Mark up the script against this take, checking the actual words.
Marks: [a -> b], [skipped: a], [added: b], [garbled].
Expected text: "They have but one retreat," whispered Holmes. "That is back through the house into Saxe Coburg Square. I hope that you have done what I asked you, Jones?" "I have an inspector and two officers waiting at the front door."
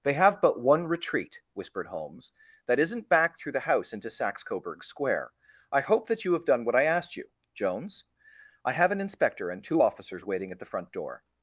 "They have but one retreat," whispered Holmes. "That [is -> isn't] back through the house into Saxe Coburg Square. I hope that you have done what I asked you, Jones?" "I have an inspector and two officers waiting at the front door."